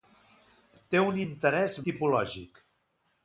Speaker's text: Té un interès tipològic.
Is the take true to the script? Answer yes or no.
yes